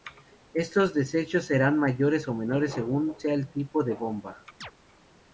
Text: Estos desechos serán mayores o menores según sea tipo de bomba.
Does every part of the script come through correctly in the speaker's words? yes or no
no